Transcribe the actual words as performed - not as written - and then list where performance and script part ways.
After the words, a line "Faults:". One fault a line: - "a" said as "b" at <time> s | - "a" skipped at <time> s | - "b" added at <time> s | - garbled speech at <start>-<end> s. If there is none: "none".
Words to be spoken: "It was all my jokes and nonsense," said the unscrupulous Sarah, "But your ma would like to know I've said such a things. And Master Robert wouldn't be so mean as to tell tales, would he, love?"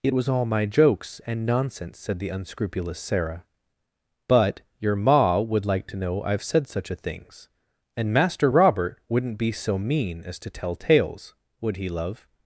"It was all my jokes and nonsense," said the unscrupulous Sarah, "But your ma would like to know I've said such a things. And Master Robert wouldn't be so mean as to tell tales, would he, love?"
Faults:
none